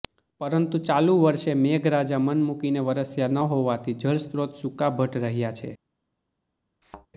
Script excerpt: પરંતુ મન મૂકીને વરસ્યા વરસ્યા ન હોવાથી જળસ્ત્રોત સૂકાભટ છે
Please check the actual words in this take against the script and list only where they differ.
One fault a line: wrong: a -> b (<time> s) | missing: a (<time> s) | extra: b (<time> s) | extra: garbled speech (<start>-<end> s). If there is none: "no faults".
extra: ચાલુ વર્ષે મેઘરાજા (0.8 s)
missing: વરસ્યા (3.3 s)
extra: રહ્યા (5.2 s)